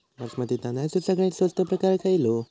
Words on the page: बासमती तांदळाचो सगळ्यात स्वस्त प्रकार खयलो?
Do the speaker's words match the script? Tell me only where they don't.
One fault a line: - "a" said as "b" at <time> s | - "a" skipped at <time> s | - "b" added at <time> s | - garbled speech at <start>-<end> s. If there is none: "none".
none